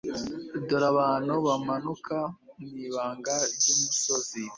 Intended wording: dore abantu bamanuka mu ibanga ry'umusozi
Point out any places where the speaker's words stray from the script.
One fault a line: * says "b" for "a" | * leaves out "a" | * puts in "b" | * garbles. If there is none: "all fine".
all fine